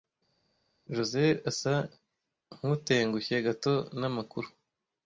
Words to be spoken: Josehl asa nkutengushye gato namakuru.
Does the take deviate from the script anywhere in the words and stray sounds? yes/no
no